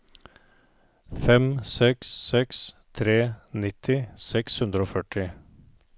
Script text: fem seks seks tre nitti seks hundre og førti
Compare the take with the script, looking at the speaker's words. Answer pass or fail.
pass